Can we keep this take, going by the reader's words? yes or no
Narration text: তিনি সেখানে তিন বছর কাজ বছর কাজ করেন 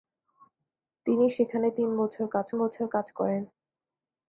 yes